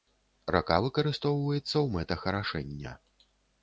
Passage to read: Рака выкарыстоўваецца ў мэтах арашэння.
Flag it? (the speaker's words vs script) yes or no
no